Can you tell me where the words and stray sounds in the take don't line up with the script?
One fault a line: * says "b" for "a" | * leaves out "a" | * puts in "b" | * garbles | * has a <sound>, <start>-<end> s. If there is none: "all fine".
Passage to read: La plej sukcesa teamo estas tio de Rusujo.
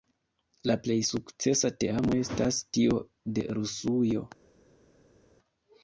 all fine